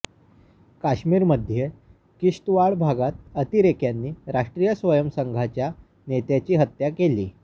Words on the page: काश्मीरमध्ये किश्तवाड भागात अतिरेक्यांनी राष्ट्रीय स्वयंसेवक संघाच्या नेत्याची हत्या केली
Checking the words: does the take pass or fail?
pass